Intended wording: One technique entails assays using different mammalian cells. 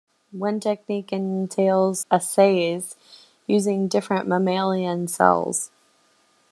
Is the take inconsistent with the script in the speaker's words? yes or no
no